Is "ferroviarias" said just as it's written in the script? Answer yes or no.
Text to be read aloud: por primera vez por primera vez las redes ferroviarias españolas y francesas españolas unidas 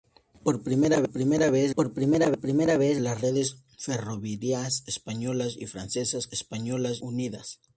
yes